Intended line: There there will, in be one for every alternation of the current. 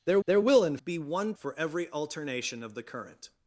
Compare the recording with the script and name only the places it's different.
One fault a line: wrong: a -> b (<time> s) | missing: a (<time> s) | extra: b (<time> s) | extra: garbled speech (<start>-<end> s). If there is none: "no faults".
no faults